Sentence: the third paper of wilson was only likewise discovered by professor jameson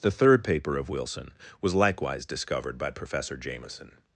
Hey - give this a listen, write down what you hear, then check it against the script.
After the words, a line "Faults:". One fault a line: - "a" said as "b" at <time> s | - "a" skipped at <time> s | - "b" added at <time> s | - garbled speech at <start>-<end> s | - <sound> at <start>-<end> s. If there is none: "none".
the third paper of wilson was likewise discovered by professor jameson
Faults:
- "only" skipped at 1.8 s